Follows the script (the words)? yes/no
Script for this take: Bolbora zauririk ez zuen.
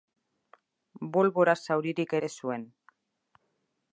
yes